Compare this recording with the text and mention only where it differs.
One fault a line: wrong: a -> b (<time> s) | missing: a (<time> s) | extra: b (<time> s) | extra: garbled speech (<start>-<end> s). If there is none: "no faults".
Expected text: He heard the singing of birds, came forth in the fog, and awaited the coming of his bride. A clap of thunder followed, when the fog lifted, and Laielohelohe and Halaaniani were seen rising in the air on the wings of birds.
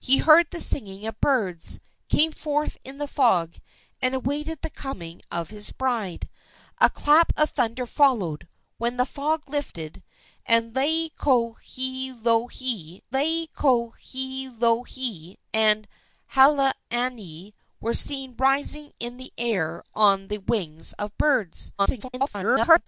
extra: Laielohelohe (13.1 s)
extra: garbled speech (21.8-22.9 s)